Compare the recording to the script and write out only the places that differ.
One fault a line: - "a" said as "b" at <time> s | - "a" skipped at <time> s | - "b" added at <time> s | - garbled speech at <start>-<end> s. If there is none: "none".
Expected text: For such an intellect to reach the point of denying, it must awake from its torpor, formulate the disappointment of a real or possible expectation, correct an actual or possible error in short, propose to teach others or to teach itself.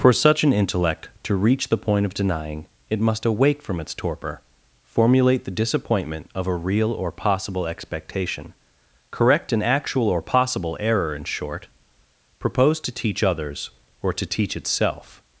none